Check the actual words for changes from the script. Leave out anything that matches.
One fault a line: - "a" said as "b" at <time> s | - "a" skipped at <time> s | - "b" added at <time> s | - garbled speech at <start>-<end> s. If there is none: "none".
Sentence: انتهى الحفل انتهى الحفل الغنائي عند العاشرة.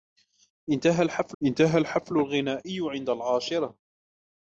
none